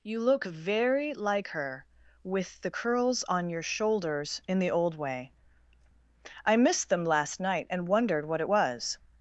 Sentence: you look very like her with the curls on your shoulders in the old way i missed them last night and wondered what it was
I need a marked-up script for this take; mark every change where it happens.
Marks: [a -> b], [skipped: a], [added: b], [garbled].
you look very like her with the curls on your shoulders in the old way i missed them last night and wondered what it was